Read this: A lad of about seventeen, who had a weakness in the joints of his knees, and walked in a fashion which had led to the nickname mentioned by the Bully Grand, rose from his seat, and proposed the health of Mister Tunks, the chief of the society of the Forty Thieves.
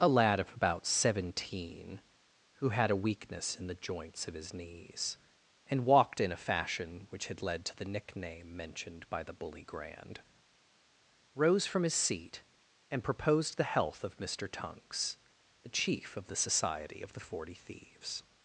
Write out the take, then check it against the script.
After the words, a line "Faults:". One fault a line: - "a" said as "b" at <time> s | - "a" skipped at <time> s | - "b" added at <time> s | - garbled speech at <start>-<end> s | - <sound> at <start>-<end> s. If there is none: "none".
A lad of about seventeen, who had a weakness in the joints of his knees, and walked in a fashion which had led to the nickname mentioned by the Bully Grand, rose from his seat, and proposed the health of Mister Tunks, the chief of the society of the Forty Thieves.
Faults:
none